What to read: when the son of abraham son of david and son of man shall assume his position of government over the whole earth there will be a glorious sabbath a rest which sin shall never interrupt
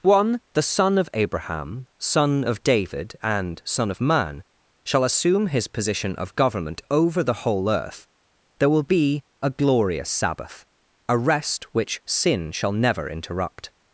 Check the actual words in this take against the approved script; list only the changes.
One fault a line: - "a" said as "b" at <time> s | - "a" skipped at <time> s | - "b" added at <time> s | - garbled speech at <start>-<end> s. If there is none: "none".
- "when" said as "one" at 0.0 s